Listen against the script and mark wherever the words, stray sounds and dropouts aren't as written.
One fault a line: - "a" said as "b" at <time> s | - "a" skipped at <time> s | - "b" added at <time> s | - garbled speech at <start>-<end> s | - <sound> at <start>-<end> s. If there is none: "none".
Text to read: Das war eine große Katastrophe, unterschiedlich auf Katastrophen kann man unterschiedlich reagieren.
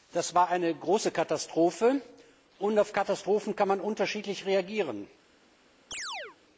- "unterschiedlich" said as "und" at 2.6 s
- chirp at 5.9-6.4 s